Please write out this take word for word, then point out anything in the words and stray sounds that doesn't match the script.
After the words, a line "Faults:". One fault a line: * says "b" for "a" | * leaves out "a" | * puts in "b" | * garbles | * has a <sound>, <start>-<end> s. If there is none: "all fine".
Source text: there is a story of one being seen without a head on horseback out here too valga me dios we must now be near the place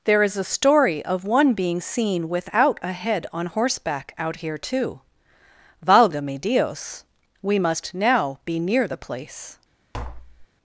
there is a story of one being seen without a head on horseback out here too valga me dios we must now be near the place
Faults:
* has a tap, 9.9-10.5 s